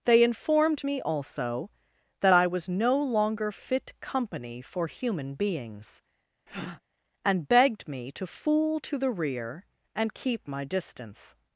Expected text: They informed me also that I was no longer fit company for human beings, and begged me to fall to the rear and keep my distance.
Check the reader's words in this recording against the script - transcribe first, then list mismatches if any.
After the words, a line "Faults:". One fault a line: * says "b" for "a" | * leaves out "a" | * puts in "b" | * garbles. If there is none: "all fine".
They informed me also that I was no longer fit company for human beings, and begged me to fool to the rear and keep my distance.
Faults:
* says "fool" for "fall"